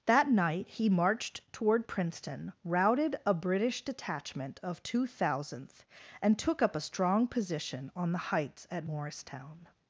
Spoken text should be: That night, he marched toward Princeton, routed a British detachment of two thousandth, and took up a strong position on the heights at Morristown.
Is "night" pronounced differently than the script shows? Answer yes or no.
no